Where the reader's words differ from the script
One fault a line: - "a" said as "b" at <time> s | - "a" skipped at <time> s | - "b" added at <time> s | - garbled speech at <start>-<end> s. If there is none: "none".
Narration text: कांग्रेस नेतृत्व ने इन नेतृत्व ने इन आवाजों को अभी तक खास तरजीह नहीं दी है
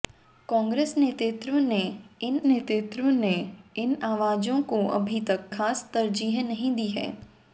none